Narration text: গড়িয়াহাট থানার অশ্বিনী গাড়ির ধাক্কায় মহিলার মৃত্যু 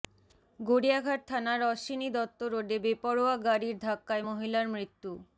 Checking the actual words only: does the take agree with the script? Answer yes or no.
no